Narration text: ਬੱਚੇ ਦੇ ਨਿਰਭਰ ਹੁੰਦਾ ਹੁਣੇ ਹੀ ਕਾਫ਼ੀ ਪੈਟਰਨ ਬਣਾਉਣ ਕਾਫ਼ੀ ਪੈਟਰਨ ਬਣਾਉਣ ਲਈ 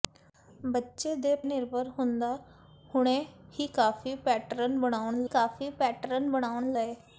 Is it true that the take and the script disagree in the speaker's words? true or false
false